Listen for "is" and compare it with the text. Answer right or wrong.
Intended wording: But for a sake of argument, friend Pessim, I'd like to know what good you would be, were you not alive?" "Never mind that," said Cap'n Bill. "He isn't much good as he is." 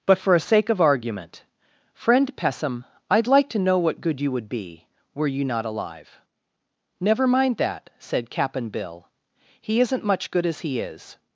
right